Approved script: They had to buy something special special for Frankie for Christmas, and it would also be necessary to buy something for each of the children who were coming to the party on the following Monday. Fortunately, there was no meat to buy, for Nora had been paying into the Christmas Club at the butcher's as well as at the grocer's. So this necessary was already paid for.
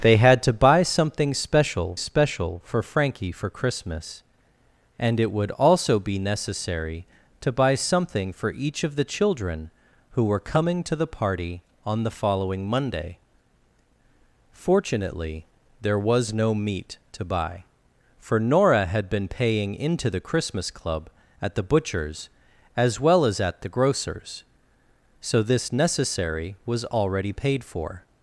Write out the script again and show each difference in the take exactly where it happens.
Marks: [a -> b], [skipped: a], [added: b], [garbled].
They had to buy something special special for Frankie for Christmas, and it would also be necessary to buy something for each of the children who were coming to the party on the following Monday. Fortunately, there was no meat to buy, for Nora had been paying into the Christmas Club at the butcher's as well as at the grocer's. So this necessary was already paid for.